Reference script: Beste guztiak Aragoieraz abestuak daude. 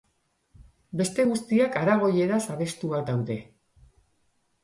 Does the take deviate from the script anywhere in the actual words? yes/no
no